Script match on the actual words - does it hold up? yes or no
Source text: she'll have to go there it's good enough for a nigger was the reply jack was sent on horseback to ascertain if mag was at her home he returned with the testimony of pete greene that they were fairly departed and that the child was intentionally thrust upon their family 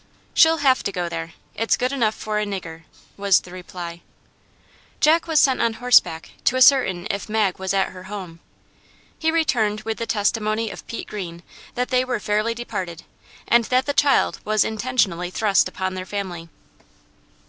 yes